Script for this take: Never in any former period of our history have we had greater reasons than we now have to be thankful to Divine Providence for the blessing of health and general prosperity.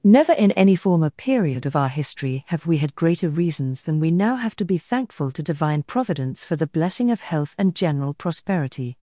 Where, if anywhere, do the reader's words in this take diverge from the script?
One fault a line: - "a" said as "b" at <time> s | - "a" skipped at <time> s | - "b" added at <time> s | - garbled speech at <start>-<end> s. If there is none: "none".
none